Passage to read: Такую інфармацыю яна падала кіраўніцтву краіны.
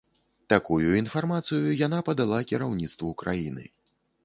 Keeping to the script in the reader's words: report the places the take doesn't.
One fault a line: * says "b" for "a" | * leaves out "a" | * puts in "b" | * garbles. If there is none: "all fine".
all fine